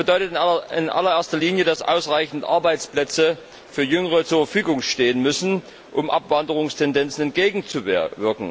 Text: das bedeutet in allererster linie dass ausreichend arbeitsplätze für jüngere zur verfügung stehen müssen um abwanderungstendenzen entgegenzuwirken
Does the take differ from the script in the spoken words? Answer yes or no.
no